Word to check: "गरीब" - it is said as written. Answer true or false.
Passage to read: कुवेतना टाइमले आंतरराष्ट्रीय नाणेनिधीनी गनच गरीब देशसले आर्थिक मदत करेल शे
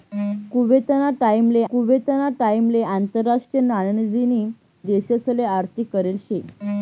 false